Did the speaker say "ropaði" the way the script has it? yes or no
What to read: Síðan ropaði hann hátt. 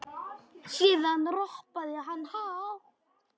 yes